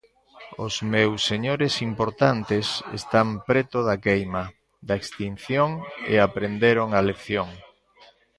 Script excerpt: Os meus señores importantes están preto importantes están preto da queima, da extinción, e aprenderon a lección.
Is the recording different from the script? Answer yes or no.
yes